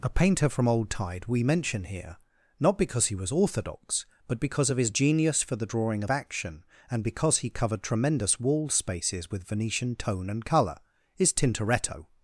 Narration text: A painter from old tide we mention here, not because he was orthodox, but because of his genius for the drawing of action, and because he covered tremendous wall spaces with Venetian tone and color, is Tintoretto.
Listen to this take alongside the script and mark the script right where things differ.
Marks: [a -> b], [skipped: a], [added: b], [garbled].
A painter from old tide we mention here, not because he was orthodox, but because of his genius for the drawing of action, and because he covered tremendous wall spaces with Venetian tone and color, is Tintoretto.